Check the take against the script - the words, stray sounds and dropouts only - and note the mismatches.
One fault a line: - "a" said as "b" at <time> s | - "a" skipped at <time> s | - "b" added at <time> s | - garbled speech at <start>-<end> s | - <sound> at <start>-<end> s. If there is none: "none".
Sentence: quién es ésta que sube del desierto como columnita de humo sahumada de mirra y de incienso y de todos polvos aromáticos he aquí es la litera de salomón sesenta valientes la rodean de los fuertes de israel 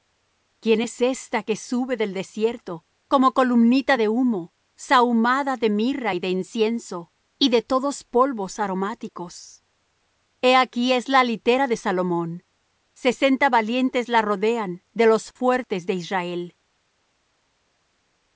none